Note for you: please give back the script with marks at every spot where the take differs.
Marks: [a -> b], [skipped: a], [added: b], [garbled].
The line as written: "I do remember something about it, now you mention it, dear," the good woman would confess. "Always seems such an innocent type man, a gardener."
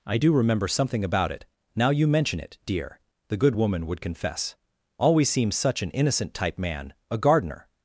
"I do remember something about it, now you mention it, dear," the good woman would confess. "Always seems such an innocent type man, a gardener."